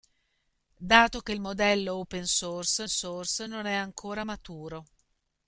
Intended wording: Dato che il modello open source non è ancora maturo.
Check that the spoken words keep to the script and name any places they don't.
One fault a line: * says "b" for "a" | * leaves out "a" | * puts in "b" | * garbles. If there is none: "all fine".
* puts in "source"